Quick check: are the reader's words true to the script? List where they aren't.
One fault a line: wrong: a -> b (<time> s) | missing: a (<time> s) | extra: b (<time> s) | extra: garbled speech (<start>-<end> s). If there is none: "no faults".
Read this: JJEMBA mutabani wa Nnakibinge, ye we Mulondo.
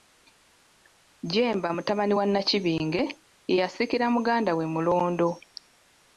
extra: yasikira muganda (3.6 s)